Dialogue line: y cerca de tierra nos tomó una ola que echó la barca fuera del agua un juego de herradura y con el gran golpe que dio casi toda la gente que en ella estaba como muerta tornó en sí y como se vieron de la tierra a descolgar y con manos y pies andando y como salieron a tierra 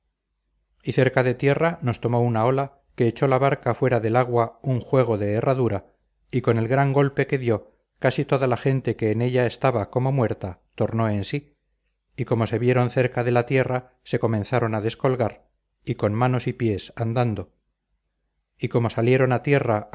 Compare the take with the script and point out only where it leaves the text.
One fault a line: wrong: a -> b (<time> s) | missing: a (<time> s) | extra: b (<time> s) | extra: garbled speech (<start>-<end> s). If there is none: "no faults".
extra: cerca (12.9 s)
extra: se comenzaron (14.0 s)